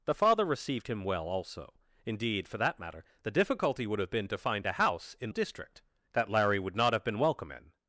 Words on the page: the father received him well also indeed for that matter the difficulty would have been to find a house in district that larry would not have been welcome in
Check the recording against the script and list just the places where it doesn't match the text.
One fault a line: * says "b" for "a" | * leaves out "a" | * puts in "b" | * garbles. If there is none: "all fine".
all fine